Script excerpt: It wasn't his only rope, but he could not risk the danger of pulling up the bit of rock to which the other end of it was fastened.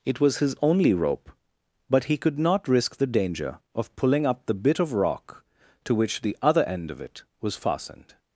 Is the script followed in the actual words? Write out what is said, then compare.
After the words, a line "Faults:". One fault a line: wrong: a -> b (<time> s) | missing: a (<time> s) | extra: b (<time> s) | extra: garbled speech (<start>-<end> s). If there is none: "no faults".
It was his only rope, but he could not risk the danger of pulling up the bit of rock to which the other end of it was fastened.
Faults:
wrong: wasn't -> was (0.2 s)